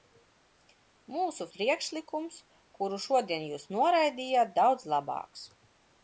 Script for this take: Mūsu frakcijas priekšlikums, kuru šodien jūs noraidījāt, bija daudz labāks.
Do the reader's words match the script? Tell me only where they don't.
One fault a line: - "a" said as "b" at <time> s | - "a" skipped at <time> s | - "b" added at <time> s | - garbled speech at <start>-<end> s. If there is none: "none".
- "frakcijas" skipped at 1.4 s
- "bija" skipped at 4.5 s